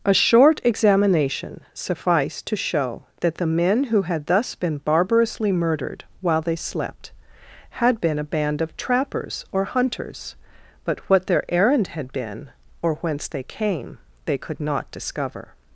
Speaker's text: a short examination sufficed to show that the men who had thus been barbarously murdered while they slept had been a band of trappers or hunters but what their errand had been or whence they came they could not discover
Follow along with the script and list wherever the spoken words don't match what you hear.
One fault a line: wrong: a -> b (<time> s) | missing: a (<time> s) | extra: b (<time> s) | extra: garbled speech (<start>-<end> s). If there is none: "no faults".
no faults